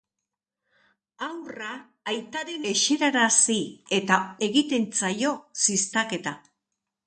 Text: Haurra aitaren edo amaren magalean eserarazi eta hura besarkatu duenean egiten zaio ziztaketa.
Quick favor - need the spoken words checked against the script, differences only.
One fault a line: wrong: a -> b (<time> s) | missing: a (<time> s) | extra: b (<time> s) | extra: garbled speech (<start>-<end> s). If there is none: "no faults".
missing: edo amaren magalean (2.6 s)
missing: hura besarkatu duenean (4.2 s)